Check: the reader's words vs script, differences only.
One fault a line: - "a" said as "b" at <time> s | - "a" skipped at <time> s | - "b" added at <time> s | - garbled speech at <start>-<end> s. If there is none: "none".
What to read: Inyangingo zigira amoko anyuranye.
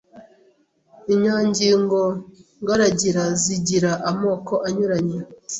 - "ngaragira" added at 2.6 s